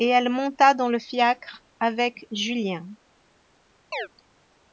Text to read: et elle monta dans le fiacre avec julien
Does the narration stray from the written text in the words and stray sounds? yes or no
yes